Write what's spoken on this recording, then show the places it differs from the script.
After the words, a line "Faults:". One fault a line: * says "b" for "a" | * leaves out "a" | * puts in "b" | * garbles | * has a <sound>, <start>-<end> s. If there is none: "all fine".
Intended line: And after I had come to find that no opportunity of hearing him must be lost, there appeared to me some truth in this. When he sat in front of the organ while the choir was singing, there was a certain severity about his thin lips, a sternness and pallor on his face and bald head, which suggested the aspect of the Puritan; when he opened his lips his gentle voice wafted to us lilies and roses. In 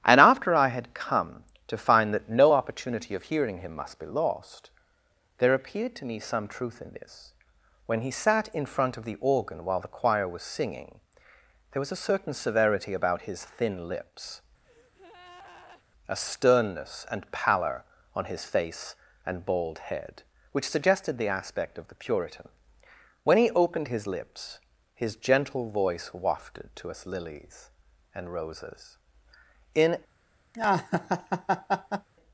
And after I had come to find that no opportunity of hearing him must be lost, there appeared to me some truth in this. When he sat in front of the organ while the choir was singing, there was a certain severity about his thin lips, a sternness and pallor on his face and bald head, which suggested the aspect of the Puritan; when he opened his lips his gentle voice wafted to us lilies and roses. In
Faults:
* has a breath, 14.6-15.8 s
* has a laugh, 30.5-32.1 s